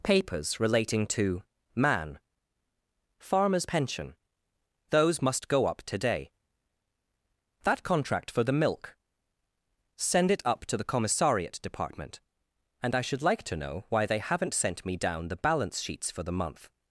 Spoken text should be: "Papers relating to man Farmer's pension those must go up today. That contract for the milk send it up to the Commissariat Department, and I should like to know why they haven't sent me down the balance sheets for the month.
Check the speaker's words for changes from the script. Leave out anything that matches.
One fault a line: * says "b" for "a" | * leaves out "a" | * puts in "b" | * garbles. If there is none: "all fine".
all fine